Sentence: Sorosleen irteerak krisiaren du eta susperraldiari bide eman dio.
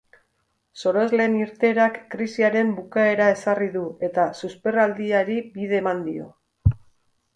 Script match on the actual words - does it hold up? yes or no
no